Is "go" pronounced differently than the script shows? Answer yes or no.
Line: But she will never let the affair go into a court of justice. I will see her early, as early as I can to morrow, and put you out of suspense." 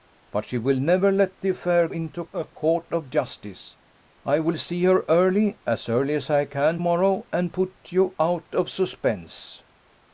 yes